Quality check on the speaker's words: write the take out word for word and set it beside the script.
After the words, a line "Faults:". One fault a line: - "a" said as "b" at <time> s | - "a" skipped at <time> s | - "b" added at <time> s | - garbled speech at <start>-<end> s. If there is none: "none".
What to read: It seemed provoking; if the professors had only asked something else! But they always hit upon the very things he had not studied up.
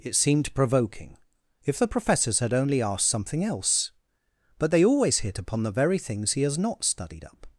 It seemed provoking; if the professors had only asked something else! But they always hit upon the very things he has not studied up.
Faults:
- "had" said as "has" at 6.4 s